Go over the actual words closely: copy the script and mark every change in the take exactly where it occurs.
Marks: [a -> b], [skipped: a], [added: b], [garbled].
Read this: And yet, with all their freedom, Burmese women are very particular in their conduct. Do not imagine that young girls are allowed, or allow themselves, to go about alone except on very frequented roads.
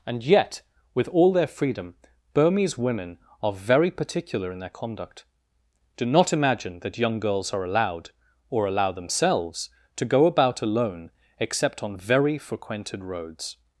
And yet, with all their freedom, Burmese women are very particular in their conduct. Do not imagine that young girls are allowed, or allow themselves, to go about alone except on very frequented roads.